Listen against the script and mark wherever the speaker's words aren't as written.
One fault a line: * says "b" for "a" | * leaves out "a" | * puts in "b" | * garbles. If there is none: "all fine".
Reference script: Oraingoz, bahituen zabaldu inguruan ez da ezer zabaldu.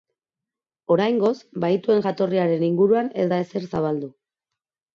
* says "jatorriaren" for "zabaldu"